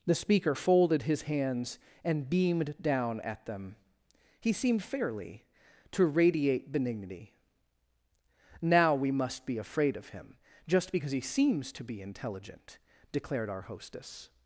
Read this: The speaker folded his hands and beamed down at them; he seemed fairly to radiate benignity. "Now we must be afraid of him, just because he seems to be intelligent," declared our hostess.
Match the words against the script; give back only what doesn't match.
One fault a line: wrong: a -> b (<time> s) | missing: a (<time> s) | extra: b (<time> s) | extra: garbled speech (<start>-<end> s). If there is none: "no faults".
no faults